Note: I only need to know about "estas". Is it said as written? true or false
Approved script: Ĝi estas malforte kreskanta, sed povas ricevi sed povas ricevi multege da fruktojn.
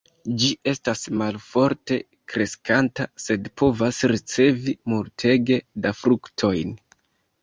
true